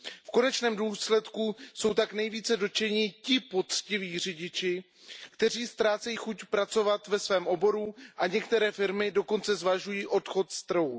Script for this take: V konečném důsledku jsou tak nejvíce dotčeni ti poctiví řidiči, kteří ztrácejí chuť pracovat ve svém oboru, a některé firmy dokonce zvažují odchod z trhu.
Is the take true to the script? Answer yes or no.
yes